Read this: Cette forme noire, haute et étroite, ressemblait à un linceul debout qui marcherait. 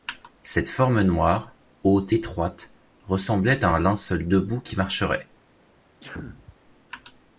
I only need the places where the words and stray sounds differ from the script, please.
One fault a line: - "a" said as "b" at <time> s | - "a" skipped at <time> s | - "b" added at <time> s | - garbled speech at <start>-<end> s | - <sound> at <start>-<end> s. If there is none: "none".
- "et" skipped at 2.1 s
- sneeze at 6.0-6.6 s